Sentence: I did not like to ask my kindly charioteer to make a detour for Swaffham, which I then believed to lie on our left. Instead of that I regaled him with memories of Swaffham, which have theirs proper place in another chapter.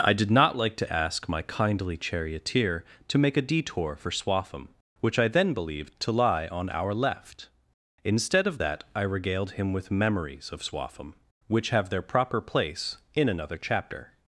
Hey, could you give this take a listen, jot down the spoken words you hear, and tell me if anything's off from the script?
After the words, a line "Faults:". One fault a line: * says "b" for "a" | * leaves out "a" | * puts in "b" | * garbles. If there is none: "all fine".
I did not like to ask my kindly charioteer to make a detour for Swaffham, which I then believed to lie on our left. Instead of that I regaled him with memories of Swaffham, which have their proper place in another chapter.
Faults:
* says "their" for "theirs"